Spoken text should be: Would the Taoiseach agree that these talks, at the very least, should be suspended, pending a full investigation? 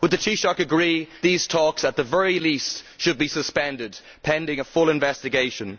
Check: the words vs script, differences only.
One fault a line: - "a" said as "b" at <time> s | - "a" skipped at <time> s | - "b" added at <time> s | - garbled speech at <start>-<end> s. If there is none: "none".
- "that" skipped at 1.1 s